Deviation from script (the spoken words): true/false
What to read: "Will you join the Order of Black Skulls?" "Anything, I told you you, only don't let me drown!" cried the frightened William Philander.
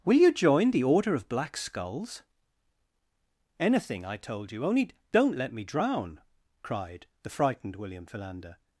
true